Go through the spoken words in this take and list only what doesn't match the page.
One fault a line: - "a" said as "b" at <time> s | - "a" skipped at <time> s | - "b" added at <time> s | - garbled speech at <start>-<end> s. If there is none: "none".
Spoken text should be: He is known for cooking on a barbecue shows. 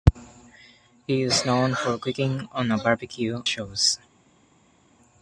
none